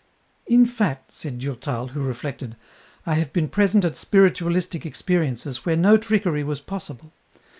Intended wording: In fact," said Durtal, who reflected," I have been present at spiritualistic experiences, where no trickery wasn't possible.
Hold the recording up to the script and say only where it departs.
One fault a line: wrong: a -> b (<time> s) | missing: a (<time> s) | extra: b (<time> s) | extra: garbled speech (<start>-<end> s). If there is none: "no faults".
wrong: wasn't -> was (6.4 s)